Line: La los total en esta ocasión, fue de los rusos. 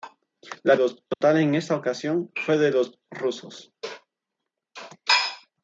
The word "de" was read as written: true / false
true